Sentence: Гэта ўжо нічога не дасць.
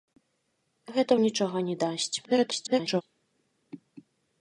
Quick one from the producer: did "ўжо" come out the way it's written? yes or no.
no